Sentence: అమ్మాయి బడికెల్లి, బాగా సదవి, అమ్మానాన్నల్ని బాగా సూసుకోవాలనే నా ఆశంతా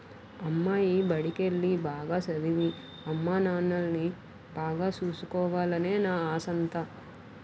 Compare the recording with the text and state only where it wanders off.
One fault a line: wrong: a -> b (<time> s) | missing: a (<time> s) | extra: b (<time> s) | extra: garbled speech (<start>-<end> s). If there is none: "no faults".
no faults